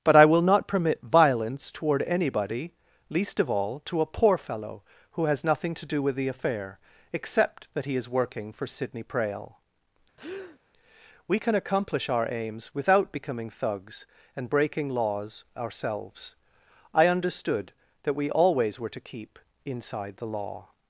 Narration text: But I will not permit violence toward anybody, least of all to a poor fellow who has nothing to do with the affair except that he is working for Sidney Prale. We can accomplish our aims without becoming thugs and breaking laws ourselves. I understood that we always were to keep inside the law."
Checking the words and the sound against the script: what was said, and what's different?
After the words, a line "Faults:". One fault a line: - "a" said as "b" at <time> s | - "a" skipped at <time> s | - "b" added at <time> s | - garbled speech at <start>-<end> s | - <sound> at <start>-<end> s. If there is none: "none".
But I will not permit violence toward anybody, least of all to a poor fellow who has nothing to do with the affair except that he is working for Sidney Prale. We can accomplish our aims without becoming thugs and breaking laws ourselves. I understood that we always were to keep inside the law."
Faults:
- breath at 10.2-10.6 s